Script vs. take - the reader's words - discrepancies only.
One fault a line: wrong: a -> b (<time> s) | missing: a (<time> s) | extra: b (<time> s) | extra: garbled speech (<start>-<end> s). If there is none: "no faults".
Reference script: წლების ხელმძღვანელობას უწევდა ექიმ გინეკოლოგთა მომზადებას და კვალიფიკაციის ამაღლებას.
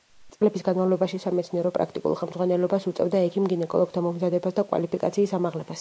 extra: განმავლობაში სამეცნიერო პრაქტიკულ (0.7 s)